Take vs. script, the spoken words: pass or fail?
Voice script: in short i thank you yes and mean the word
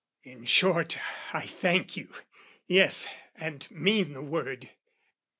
pass